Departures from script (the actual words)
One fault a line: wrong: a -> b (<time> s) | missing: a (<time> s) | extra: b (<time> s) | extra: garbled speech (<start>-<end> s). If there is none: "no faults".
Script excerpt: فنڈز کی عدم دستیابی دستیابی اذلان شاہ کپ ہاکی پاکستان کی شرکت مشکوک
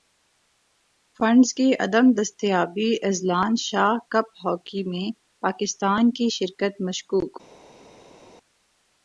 missing: دستیابی (2.9 s)
extra: میں (4.9 s)